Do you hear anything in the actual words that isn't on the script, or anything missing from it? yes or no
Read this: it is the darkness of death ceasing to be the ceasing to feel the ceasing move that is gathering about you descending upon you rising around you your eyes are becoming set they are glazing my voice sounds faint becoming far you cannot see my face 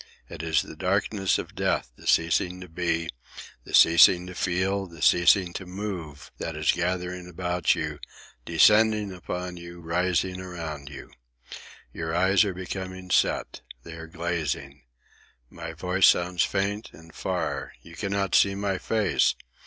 yes